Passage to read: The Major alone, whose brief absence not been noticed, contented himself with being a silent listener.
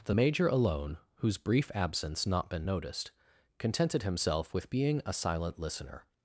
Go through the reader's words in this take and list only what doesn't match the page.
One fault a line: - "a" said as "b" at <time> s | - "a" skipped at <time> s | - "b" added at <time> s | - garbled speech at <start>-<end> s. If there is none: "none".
none